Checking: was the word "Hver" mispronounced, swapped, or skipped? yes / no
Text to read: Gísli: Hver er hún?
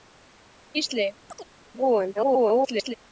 yes